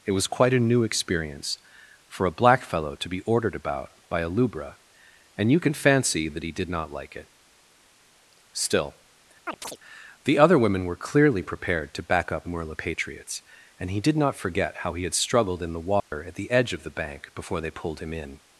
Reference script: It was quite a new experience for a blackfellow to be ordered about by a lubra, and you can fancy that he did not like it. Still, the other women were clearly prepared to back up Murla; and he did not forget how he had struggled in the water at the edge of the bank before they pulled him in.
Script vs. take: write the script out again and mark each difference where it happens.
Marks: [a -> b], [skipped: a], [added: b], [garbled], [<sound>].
It was quite a new experience for a blackfellow to be ordered about by a lubra, and you can fancy that he did not like it. Still, [chirp] the other women were clearly prepared to back up Murla; [added: patriots] and he did not forget how he had struggled in the water [dropout] at the edge of the bank before they pulled him in.